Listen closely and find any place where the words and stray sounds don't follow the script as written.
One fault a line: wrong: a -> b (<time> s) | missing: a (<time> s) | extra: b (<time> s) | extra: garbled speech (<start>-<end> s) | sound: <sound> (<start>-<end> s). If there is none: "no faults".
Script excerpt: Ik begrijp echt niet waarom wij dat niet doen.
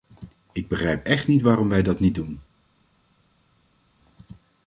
no faults